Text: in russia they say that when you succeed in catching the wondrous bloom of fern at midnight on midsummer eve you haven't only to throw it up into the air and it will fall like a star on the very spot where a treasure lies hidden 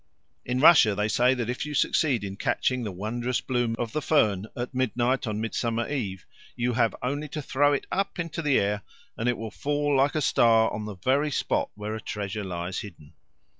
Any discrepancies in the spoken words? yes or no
yes